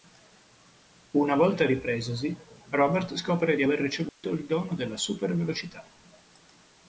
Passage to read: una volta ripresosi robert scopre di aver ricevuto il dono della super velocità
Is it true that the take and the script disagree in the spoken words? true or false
false